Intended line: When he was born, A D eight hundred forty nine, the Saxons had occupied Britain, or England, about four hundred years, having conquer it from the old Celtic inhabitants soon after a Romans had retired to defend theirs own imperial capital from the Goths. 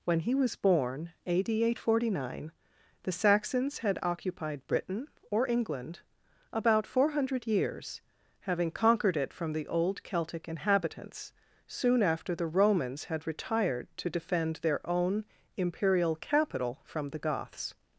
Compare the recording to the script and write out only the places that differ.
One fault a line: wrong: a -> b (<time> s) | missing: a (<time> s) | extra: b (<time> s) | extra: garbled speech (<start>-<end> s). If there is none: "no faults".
wrong: conquer -> conquered (8.7 s)
wrong: a -> the (12.3 s)
wrong: theirs -> their (14.6 s)